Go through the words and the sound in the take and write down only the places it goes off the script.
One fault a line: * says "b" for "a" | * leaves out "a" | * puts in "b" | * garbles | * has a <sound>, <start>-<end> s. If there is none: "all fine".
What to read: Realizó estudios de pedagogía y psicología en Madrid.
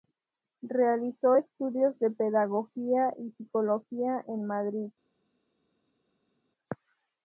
all fine